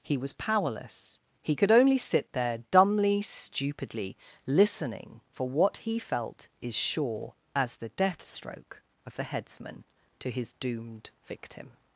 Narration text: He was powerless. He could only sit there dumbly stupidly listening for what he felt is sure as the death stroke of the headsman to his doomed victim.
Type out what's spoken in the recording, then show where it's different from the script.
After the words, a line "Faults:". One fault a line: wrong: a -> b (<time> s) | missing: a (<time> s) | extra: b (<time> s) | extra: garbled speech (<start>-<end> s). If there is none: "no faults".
He was powerless. He could only sit there dumbly stupidly listening for what he felt is sure as the death stroke of the headsman to his doomed victim.
Faults:
no faults